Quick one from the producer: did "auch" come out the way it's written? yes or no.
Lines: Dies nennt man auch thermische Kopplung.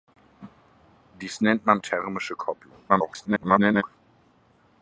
no